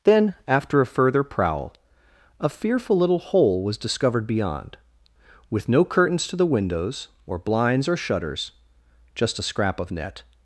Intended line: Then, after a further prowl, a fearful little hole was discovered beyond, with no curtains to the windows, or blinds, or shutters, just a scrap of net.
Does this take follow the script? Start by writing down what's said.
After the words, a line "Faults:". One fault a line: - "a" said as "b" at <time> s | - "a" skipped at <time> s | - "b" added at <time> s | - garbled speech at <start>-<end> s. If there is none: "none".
Then, after a further prowl, a fearful little hole was discovered beyond, with no curtains to the windows, or blinds, or shutters, just a scrap of net.
Faults:
none